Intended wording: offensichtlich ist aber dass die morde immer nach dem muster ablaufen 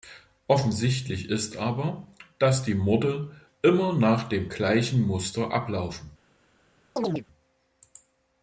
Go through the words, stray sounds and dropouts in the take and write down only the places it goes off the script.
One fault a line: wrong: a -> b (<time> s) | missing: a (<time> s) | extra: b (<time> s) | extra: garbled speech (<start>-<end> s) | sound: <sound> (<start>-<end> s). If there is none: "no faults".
extra: gleichen (4.5 s)
sound: chirp (7.0-7.3 s)